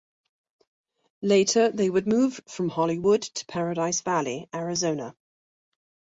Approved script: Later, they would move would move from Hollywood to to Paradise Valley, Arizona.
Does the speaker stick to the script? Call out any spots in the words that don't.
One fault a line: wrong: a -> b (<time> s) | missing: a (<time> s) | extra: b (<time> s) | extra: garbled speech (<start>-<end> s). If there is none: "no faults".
missing: would move (2.4 s)
missing: to (3.5 s)